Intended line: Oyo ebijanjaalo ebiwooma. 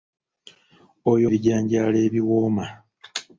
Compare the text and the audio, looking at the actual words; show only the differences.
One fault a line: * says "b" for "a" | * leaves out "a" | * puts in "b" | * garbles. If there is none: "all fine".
all fine